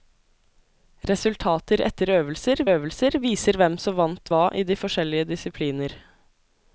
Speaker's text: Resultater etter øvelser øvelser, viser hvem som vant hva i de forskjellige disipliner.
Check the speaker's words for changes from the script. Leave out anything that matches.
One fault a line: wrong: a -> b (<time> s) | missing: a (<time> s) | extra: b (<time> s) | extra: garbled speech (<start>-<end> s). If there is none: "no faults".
no faults